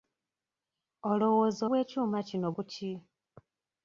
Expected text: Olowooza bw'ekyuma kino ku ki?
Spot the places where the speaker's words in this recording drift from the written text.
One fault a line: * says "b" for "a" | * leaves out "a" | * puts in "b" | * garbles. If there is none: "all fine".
all fine